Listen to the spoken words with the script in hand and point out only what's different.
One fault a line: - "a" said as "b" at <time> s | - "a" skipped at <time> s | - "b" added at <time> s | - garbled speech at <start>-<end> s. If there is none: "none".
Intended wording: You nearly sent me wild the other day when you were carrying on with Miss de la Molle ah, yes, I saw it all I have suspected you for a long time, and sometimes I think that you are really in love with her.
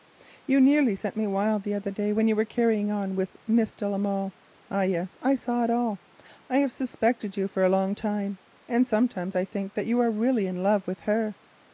none